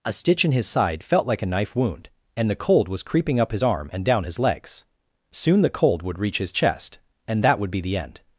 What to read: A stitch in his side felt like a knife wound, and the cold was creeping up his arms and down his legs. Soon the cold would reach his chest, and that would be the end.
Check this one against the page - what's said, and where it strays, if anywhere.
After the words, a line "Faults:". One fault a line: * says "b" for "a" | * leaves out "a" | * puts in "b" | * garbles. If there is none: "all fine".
A stitch in his side felt like a knife wound, and the cold was creeping up his arm and down his legs. Soon the cold would reach his chest, and that would be the end.
Faults:
* says "arm" for "arms"